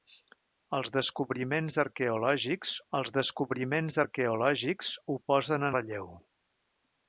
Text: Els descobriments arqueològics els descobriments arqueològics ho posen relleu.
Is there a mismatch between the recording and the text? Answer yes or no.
no